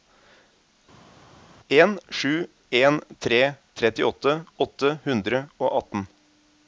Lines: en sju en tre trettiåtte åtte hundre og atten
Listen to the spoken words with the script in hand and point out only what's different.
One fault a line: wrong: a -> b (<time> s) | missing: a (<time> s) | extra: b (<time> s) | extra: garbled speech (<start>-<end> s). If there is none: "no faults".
no faults